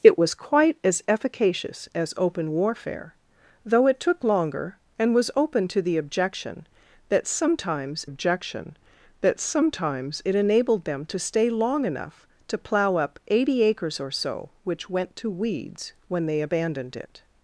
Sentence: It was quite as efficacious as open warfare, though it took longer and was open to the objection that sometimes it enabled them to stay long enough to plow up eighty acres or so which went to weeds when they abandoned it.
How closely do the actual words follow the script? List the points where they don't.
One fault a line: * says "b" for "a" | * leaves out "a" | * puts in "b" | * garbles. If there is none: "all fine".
* puts in "objection that sometimes"